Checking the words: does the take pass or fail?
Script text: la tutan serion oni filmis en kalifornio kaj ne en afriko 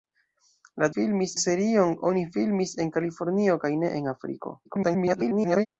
fail